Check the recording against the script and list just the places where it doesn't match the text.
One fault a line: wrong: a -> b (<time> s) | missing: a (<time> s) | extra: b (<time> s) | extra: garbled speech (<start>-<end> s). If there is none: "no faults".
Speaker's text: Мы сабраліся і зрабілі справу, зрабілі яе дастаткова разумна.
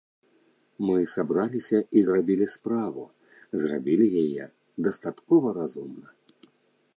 no faults